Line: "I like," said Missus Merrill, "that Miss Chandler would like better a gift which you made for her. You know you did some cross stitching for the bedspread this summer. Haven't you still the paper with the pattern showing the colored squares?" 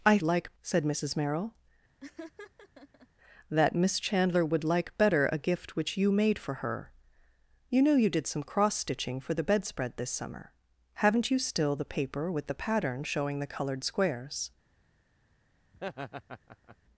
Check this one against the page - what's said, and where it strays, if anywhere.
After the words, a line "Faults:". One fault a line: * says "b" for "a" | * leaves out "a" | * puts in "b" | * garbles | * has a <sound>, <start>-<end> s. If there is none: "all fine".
"I like," said Missus Merrill, "that Miss Chandler would like better a gift which you made for her. You know you did some cross stitching for the bedspread this summer. Haven't you still the paper with the pattern showing the colored squares?"
Faults:
* has a laugh, 2.0-3.1 s
* has a laugh, 15.7-16.8 s